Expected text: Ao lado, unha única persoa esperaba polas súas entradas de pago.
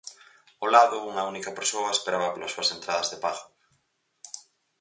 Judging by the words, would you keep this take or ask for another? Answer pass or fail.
pass